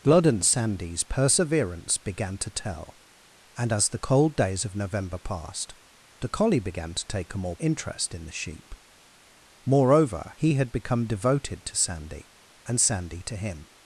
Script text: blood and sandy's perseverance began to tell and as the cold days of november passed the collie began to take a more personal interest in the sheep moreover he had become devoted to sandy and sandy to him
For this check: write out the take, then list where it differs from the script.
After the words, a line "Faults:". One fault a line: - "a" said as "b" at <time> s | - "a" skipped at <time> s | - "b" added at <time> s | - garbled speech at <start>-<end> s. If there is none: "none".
blood and sandy's perseverance began to tell and as the cold days of november passed the collie began to take a more interest in the sheep moreover he had become devoted to sandy and sandy to him
Faults:
- "personal" skipped at 7.5 s